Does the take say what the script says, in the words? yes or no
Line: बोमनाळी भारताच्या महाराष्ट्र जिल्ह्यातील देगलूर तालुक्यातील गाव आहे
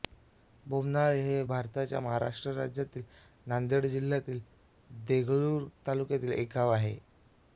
no